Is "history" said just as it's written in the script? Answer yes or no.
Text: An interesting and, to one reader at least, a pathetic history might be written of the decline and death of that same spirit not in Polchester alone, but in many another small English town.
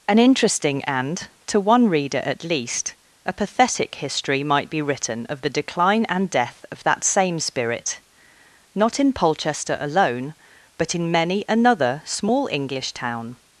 yes